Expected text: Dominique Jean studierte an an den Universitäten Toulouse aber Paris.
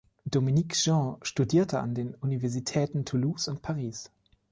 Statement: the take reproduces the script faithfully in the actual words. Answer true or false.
false